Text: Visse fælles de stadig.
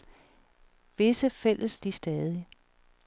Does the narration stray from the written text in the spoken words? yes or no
no